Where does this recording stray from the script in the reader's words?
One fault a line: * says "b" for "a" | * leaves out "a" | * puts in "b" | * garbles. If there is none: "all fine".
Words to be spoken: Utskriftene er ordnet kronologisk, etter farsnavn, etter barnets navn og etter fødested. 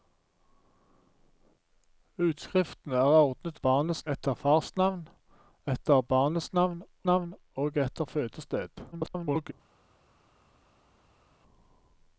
* says "barnets" for "kronologisk"
* puts in "navn"
* garbles